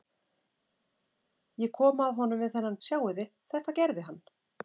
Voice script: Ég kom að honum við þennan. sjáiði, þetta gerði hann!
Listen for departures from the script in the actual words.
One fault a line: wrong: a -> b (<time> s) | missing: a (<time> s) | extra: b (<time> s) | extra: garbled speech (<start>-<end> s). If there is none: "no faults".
no faults